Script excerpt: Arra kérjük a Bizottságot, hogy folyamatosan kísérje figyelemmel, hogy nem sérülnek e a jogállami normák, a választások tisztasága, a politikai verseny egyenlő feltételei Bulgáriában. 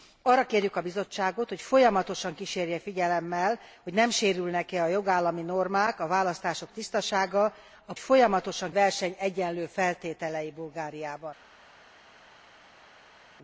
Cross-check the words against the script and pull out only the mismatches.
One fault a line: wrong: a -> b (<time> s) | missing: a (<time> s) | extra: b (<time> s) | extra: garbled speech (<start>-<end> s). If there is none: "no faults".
wrong: politikai -> folyamatosan (8.0 s)